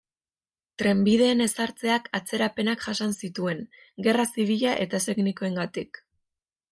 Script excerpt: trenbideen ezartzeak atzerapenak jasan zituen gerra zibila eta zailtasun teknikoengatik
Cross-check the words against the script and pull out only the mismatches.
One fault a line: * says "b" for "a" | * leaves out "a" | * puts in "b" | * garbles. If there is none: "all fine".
* leaves out "zailtasun"